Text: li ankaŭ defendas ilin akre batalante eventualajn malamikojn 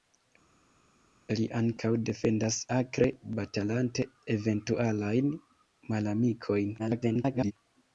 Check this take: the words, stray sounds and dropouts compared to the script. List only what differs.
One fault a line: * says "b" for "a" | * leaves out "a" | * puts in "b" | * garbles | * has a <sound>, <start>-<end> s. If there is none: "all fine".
* leaves out "ilin"
* garbles